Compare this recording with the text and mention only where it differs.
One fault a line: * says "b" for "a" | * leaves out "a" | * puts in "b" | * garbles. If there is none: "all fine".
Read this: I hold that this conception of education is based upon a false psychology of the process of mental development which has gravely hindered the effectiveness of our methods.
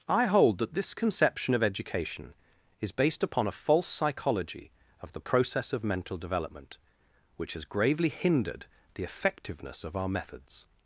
all fine